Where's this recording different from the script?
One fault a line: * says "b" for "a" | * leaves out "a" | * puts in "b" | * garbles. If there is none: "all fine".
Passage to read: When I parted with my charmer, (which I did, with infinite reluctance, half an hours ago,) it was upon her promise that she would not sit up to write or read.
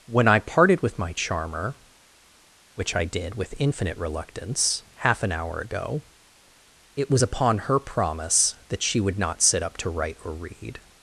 * says "hour" for "hours"